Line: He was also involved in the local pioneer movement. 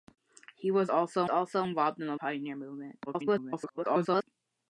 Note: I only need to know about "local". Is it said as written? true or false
false